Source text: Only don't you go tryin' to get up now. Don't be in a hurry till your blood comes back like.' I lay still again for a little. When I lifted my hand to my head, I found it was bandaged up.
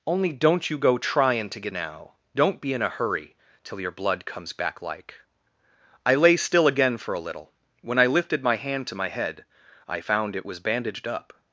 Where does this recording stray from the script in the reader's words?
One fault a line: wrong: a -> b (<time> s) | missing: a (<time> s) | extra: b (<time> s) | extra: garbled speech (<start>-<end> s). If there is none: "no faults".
missing: up (1.7 s)